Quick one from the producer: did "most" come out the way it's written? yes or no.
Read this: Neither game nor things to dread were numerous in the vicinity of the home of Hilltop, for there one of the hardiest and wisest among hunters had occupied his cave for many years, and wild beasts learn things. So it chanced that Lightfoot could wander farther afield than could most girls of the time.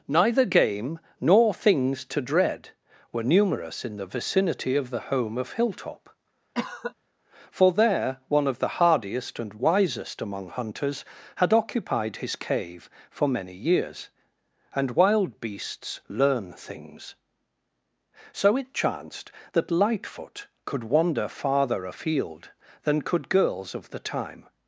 no